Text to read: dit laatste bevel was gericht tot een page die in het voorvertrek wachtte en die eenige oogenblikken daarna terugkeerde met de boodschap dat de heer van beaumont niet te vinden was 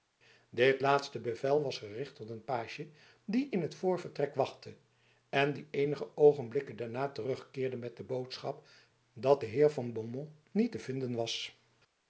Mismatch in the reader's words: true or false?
false